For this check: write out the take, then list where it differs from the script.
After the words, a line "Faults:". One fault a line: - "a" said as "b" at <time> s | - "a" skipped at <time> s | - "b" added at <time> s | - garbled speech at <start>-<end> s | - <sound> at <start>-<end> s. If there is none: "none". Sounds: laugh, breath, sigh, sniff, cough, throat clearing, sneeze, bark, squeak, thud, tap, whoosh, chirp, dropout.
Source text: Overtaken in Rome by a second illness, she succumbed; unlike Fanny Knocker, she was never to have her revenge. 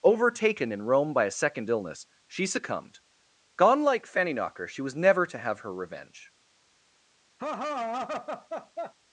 Overtaken in Rome by a second illness, she succumbed; gone like Fanny Knocker, she was never to have her revenge.
Faults:
- "unlike" said as "gone like" at 3.6 s
- laugh at 7.4-8.9 s